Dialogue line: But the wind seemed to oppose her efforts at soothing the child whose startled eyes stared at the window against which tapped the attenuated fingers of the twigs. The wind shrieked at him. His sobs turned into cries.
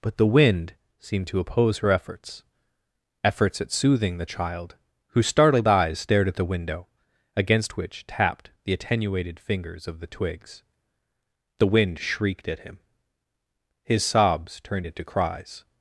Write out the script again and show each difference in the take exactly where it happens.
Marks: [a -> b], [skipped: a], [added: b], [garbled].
But the wind seemed to oppose her efforts [added: efforts] at soothing the child whose startled eyes stared at the window against which tapped the attenuated fingers of the twigs. The wind shrieked at him. His sobs turned into cries.